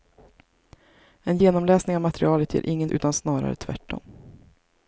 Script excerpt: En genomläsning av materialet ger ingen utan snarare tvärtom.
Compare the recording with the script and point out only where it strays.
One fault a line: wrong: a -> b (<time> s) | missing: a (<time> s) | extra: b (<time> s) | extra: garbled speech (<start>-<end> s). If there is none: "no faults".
no faults